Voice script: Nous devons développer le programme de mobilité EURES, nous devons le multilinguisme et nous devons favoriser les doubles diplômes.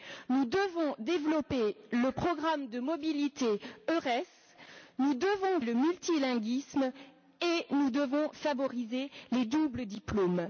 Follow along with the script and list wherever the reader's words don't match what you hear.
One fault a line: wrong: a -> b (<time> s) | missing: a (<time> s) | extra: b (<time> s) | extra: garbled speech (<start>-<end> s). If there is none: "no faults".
no faults